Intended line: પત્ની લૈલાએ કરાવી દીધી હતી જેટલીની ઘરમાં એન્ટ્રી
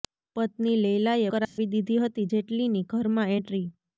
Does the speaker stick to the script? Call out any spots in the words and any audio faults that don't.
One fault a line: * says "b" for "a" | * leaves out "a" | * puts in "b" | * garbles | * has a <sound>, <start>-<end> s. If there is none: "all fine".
* has a dropout, 1.4-1.6 s